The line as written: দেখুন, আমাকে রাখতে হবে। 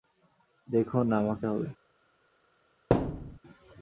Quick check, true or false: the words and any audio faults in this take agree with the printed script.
false